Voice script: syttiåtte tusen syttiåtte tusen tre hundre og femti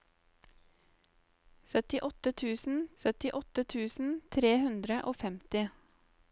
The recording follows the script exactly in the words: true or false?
true